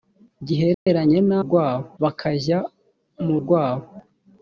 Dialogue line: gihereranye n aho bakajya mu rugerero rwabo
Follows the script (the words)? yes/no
no